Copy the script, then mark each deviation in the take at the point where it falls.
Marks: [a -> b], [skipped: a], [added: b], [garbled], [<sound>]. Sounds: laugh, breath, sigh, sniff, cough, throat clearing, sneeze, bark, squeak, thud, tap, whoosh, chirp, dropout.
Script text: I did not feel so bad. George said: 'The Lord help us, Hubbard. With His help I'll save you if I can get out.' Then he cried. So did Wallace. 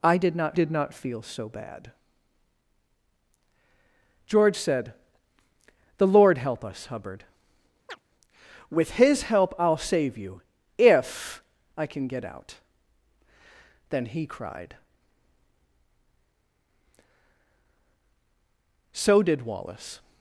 I did not [added: did not] feel so bad. George said: 'The Lord help us, Hubbard. [chirp] With His help I'll save you if I can get out.' Then he cried. So did Wallace.